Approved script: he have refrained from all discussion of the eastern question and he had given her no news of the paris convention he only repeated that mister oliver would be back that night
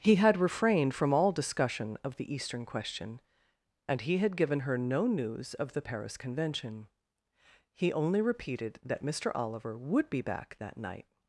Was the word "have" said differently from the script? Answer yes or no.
yes